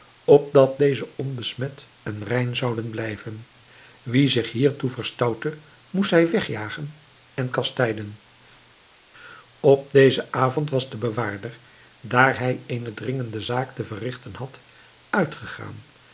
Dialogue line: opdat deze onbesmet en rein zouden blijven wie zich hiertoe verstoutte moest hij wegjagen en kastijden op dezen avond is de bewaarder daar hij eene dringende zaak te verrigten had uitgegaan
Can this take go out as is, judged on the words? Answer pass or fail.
fail